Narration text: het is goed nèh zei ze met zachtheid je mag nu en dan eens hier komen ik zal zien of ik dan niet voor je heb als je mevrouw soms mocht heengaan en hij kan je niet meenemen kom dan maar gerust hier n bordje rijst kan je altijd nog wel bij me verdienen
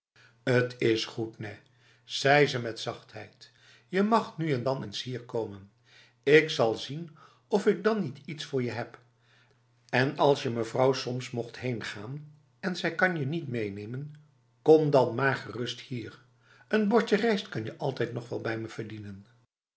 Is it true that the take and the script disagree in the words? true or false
true